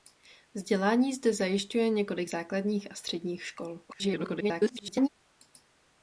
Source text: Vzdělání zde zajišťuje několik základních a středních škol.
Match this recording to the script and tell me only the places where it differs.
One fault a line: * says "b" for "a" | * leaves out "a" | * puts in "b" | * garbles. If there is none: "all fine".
* garbles